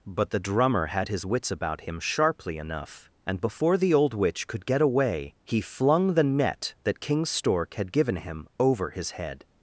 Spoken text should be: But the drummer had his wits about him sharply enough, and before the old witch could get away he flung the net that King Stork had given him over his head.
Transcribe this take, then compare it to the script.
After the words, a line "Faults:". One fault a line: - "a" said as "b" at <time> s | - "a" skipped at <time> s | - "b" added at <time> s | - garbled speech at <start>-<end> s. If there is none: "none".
But the drummer had his wits about him sharply enough, and before the old witch could get away he flung the net that King Stork had given him over his head.
Faults:
none